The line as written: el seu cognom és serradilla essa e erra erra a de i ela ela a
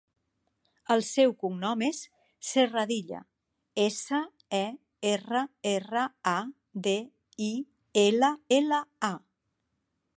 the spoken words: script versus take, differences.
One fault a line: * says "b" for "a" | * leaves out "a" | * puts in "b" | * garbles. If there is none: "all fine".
all fine